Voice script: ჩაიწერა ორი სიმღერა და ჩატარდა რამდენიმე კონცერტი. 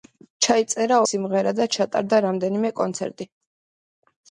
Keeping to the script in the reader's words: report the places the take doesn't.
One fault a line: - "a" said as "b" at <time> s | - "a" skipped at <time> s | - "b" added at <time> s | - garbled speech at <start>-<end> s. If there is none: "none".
- "ორი" skipped at 1.0 s